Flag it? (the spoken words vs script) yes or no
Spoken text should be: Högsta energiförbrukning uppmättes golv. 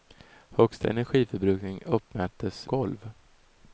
no